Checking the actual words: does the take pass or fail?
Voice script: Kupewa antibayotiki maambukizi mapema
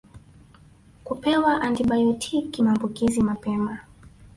pass